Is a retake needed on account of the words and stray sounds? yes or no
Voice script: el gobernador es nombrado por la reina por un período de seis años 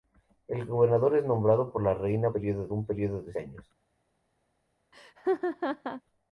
yes